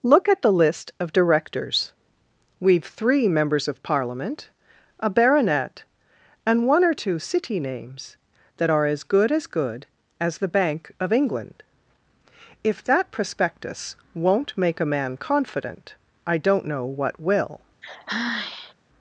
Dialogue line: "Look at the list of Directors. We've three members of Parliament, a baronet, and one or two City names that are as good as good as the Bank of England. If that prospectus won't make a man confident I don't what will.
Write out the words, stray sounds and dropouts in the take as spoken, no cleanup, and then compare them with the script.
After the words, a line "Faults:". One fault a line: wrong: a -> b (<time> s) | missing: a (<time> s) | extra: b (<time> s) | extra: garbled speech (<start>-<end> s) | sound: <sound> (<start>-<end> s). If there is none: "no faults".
"Look at the list of Directors. We've three members of Parliament, a baronet, and one or two City names that are as good as good as the Bank of England. If that prospectus won't make a man confident I don't know what will.
Faults:
extra: know (16.7 s)
sound: sigh (17.8-18.7 s)